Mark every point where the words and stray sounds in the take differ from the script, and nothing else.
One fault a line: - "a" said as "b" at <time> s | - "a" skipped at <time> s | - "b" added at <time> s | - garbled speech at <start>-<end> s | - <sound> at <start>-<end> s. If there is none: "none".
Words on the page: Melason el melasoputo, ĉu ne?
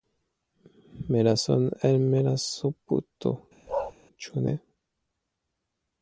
- bark at 3.7-3.9 s